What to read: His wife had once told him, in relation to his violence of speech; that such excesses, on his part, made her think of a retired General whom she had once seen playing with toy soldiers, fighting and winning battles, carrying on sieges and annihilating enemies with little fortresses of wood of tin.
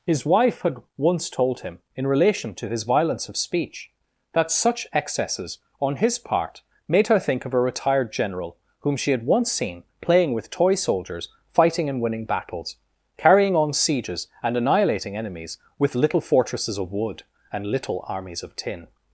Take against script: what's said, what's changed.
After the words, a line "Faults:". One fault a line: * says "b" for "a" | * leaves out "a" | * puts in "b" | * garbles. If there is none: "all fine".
His wife had once told him, in relation to his violence of speech; that such excesses, on his part, made her think of a retired General whom she had once seen playing with toy soldiers, fighting and winning battles, carrying on sieges and annihilating enemies with little fortresses of wood and little armies of tin.
Faults:
* puts in "and little armies"